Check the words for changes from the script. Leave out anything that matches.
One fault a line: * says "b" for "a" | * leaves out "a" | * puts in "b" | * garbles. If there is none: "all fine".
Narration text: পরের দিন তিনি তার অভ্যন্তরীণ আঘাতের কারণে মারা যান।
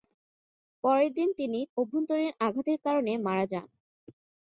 * leaves out "তার"